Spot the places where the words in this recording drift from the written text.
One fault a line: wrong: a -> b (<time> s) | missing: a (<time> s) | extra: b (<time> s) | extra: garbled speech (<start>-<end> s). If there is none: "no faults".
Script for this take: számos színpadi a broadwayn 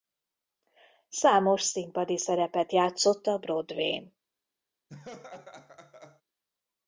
extra: szerepet játszott (2.2 s)